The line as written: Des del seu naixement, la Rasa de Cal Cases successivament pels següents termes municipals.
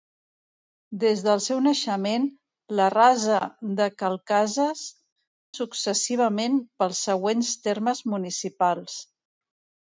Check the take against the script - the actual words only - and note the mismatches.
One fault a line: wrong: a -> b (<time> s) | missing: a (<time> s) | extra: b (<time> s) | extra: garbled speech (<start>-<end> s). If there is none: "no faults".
no faults